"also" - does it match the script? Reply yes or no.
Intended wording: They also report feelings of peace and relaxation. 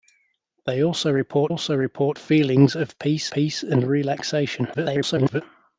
yes